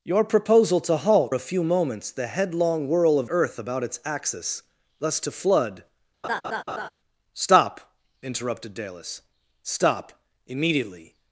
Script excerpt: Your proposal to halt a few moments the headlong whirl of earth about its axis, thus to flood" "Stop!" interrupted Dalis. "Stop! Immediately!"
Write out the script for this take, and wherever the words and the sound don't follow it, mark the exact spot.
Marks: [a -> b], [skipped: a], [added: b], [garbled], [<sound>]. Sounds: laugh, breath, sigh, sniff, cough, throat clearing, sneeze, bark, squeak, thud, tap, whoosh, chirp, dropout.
Your proposal to halt a few moments the headlong whirl of earth about its axis, thus to flood" [laugh] "Stop!" interrupted Dalis. "Stop! Immediately!"